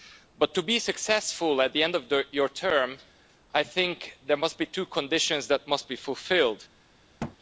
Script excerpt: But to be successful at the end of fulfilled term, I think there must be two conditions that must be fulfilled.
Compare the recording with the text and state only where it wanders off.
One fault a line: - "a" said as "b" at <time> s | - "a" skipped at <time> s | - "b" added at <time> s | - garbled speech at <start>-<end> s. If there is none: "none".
- "fulfilled" said as "your" at 2.3 s